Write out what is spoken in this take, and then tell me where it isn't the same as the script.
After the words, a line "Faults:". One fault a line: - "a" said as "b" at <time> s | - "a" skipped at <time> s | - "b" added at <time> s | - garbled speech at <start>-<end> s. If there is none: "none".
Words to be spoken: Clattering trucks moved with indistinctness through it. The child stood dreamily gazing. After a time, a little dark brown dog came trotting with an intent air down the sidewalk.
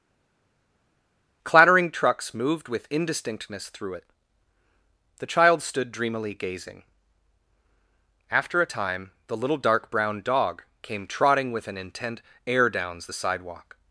Clattering trucks moved with indistinctness through it. The child stood dreamily gazing. After a time, the little dark brown dog came trotting with an intent air downs the sidewalk.
Faults:
- "a" said as "the" at 9.3 s
- "down" said as "downs" at 12.7 s